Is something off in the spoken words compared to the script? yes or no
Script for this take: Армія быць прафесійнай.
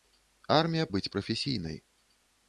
no